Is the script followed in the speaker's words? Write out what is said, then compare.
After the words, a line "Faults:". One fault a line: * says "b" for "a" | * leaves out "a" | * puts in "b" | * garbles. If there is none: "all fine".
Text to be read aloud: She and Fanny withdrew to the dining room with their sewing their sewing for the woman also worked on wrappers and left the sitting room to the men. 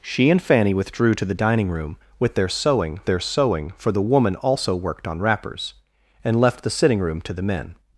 She and Fanny withdrew to the dining room with their sewing their sewing for the woman also worked on wrappers and left the sitting room to the men.
Faults:
all fine